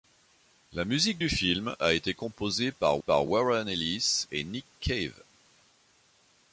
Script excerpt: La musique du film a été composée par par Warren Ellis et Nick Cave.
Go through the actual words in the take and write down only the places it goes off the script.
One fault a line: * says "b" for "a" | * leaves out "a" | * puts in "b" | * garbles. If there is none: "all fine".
all fine